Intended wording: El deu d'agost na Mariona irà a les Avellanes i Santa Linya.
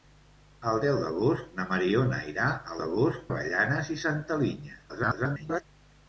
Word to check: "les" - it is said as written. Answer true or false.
false